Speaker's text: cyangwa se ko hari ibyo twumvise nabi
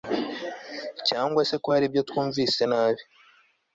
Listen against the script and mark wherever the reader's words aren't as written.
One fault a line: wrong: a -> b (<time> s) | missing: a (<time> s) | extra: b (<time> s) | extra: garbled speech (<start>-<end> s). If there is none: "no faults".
no faults